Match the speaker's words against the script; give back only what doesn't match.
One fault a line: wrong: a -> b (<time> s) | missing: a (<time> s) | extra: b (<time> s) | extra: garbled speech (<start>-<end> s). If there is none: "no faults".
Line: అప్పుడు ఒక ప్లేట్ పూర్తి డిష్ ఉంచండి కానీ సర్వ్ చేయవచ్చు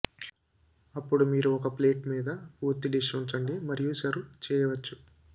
extra: మీరు (1.2 s)
extra: మీద (2.1 s)
wrong: కానీ -> మరియు (3.7 s)